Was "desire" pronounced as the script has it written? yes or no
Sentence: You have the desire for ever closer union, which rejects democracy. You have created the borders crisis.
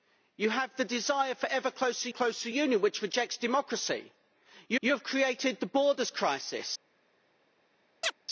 yes